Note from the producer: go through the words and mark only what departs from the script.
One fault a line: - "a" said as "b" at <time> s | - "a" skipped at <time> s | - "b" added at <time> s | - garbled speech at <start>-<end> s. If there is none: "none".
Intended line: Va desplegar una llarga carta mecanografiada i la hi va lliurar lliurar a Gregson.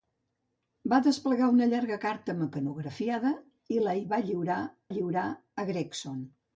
none